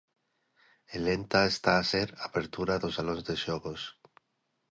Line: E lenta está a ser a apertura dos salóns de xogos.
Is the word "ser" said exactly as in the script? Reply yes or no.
yes